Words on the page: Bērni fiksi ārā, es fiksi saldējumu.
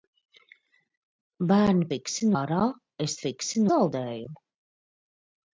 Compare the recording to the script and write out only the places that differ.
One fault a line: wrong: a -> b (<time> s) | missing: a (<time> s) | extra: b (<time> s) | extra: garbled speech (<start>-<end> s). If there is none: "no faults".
no faults